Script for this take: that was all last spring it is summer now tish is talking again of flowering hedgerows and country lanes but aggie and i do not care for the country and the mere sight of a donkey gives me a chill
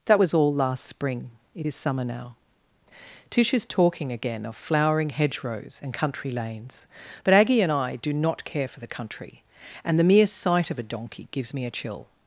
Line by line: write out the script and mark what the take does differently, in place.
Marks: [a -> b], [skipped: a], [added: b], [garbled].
that was all last spring it is summer now tish is talking again of flowering hedgerows and country lanes but aggie and i do not care for the country and the mere sight of a donkey gives me a chill